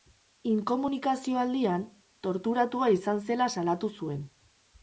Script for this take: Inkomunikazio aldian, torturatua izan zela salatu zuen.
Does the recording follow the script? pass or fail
pass